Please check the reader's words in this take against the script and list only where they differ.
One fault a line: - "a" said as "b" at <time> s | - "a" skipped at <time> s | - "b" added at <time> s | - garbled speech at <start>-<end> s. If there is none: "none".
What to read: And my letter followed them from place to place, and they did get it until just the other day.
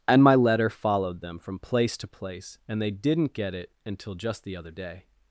- "did" said as "didn't" at 2.9 s